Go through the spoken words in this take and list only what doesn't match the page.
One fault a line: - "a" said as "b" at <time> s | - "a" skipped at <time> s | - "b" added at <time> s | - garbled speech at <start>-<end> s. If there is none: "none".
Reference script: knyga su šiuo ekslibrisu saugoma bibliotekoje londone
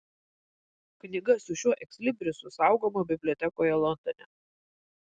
none